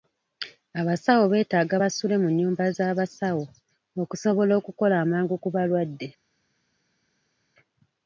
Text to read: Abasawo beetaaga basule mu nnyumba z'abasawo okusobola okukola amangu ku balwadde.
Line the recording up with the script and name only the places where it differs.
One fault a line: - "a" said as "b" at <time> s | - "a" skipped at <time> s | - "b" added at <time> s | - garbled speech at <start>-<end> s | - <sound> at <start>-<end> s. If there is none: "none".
none